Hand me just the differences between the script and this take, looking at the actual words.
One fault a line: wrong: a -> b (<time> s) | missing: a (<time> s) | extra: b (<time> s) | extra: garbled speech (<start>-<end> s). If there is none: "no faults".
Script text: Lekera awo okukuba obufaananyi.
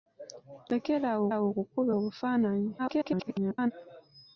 extra: awo (1.3 s)
extra: garbled speech (2.8-3.7 s)